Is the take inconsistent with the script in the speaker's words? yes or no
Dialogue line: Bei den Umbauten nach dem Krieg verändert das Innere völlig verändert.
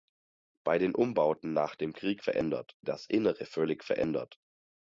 no